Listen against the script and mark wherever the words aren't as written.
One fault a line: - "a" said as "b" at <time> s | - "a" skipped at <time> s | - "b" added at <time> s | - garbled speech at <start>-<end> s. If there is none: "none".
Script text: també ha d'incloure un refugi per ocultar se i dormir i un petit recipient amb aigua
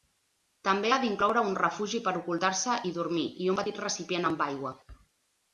none